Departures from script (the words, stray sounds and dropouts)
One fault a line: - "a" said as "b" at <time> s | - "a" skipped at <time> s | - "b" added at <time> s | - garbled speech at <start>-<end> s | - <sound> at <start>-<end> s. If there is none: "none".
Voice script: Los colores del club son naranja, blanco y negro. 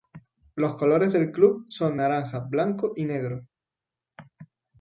none